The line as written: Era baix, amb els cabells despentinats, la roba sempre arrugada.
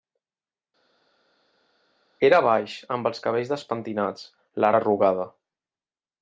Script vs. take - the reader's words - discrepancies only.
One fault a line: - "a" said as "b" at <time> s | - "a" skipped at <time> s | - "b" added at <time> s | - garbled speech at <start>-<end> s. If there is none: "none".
- "roba sempre" skipped at 4.7 s